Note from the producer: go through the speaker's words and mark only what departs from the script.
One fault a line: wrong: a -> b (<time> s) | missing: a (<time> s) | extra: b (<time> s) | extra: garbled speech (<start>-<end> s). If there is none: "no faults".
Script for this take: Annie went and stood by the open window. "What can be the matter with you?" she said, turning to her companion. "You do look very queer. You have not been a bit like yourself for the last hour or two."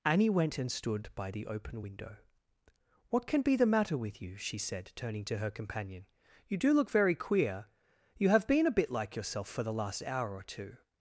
missing: not (8.5 s)